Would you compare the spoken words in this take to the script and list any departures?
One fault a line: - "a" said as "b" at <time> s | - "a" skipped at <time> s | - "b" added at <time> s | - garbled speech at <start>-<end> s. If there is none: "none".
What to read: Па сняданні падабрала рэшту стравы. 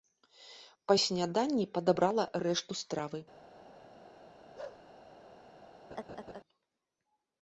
none